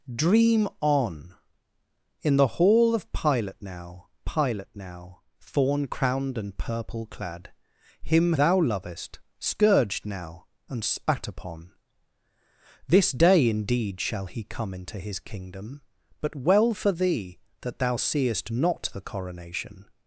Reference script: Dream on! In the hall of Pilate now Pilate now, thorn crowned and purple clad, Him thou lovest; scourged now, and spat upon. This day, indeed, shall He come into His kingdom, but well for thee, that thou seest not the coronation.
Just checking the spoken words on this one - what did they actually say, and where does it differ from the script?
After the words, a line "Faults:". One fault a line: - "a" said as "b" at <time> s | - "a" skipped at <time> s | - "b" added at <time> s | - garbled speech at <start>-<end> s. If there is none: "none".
Dream on! In the hall of Pilate now Pilate now, thorn crowned and purple clad, Him thou lovest; scourged now, and spat upon. This day, indeed, shall He come into His kingdom, but well for thee, that thou seest not the coronation.
Faults:
none